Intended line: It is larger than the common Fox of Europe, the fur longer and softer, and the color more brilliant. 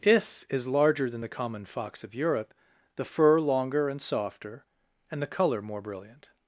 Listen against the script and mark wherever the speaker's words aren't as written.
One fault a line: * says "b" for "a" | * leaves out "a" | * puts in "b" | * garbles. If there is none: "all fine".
* says "If" for "It"